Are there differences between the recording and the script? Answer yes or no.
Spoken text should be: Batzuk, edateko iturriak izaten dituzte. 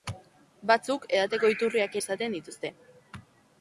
no